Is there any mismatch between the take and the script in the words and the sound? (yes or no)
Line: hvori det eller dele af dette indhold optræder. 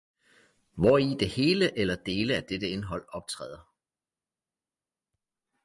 yes